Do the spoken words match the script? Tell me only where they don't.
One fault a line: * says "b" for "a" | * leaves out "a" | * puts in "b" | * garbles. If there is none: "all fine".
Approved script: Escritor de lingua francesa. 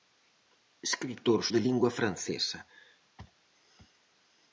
all fine